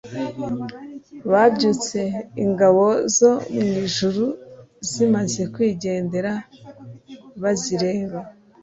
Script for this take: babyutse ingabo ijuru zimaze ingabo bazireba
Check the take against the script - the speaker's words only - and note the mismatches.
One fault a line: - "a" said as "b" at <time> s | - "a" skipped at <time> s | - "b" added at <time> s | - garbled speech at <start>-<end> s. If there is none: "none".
- "zo mu" added at 3.2 s
- "ingabo" said as "kwigendera" at 5.5 s